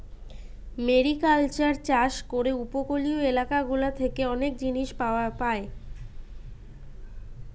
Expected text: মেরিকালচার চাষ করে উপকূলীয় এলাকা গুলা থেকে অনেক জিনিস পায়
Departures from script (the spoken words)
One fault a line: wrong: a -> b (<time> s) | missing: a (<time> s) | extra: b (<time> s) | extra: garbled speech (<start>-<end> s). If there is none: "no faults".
no faults